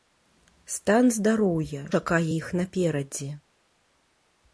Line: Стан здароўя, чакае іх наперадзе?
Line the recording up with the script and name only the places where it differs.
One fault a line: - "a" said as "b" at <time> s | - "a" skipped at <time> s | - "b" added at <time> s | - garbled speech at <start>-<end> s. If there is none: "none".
none